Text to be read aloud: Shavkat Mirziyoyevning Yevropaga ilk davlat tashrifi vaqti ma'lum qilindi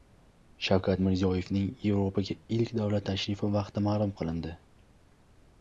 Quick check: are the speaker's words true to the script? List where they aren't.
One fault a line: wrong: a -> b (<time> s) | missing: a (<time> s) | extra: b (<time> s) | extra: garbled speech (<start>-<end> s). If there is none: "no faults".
no faults